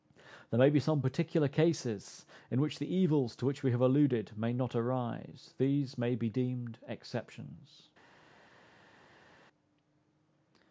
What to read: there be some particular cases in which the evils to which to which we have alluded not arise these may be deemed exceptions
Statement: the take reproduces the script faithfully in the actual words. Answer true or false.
false